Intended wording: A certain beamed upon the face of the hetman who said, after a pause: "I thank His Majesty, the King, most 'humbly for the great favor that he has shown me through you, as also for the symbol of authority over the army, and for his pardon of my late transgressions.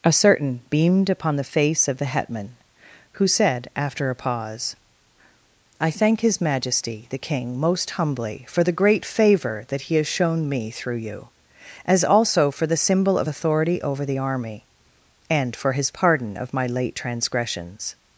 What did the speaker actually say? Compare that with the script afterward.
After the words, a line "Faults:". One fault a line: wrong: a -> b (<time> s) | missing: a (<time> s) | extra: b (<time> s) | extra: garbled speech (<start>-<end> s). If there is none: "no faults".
A certain beamed upon the face of the hetman who said, after a pause: "I thank His Majesty, the King, most 'humbly for the great favor that he has shown me through you, as also for the symbol of authority over the army, and for his pardon of my late transgressions.
Faults:
no faults